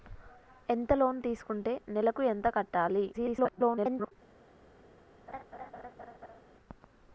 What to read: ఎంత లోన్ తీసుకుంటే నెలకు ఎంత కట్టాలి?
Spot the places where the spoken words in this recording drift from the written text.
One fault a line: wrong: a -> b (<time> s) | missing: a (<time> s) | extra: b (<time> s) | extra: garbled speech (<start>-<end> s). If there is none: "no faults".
extra: garbled speech (3.1-4.1 s)